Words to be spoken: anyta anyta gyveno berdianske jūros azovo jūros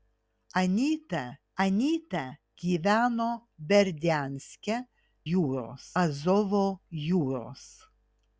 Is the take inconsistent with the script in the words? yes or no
no